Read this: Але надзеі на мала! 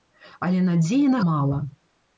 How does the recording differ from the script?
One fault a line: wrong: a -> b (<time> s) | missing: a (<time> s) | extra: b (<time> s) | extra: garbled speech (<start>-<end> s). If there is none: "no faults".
no faults